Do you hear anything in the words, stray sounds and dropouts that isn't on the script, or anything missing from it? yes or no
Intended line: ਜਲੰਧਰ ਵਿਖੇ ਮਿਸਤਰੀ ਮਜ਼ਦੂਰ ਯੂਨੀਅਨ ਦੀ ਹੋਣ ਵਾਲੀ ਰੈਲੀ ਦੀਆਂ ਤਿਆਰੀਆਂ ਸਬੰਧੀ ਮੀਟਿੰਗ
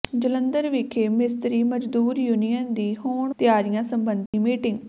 yes